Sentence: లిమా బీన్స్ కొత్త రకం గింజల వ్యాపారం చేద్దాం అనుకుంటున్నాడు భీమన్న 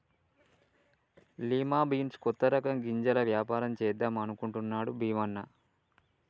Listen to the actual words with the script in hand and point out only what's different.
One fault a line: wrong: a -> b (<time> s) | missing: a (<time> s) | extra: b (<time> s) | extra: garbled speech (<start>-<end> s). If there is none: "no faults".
no faults